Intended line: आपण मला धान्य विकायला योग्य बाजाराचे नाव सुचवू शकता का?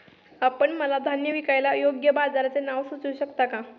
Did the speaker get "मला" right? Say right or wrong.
right